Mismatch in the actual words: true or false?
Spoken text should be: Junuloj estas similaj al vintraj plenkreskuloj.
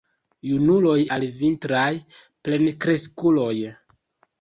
true